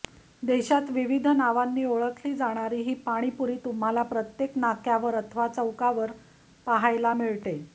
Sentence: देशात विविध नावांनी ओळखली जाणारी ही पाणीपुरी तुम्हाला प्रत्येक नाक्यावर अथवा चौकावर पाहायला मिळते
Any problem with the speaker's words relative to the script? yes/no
no